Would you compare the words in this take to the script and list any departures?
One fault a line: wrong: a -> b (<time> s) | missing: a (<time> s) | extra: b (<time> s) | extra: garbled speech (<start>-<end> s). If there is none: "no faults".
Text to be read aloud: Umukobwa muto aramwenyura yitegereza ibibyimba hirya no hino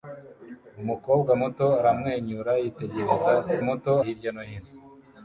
wrong: ibibyimba -> muto (3.7 s)